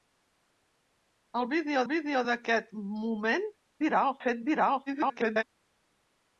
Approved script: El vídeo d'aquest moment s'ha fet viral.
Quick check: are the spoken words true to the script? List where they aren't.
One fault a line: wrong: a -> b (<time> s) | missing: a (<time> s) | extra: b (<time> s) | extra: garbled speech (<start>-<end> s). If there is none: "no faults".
extra: vídeo (1.9 s)
wrong: s'ha -> viral (3.8 s)
extra: garbled speech (4.9-5.4 s)